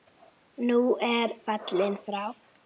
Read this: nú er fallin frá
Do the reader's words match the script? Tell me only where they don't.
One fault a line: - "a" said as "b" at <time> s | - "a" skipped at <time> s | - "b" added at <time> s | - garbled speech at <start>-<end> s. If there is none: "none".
none